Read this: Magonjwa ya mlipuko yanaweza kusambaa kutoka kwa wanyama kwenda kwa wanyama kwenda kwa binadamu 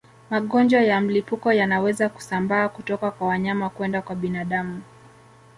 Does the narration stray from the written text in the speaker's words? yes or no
yes